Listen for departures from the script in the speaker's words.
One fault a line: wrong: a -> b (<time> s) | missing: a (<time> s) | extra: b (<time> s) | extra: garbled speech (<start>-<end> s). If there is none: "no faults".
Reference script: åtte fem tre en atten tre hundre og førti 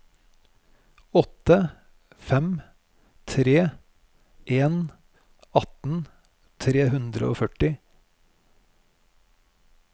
no faults